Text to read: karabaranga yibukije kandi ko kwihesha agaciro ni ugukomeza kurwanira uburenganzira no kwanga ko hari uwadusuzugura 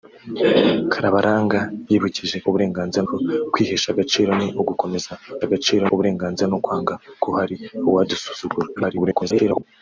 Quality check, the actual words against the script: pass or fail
fail